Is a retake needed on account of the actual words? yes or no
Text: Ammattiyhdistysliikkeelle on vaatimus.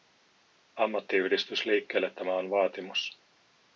yes